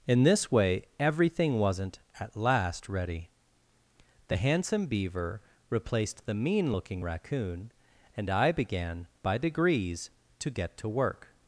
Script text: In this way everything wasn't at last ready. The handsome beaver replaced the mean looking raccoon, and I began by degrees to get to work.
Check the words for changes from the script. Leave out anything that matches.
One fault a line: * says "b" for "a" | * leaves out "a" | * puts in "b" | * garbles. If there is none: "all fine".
all fine